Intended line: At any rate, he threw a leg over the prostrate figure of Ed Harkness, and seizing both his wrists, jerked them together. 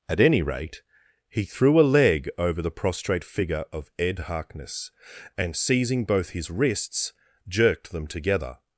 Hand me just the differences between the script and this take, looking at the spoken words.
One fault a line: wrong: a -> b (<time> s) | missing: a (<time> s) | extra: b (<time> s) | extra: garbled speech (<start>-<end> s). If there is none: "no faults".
no faults